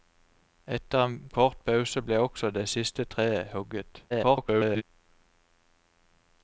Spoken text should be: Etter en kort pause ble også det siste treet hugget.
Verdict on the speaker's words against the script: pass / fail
fail